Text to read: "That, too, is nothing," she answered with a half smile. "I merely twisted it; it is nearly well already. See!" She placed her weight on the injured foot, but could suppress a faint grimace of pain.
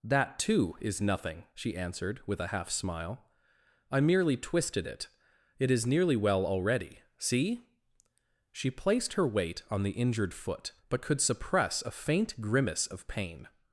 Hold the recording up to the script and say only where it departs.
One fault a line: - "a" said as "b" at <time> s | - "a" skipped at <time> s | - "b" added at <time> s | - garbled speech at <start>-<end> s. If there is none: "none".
none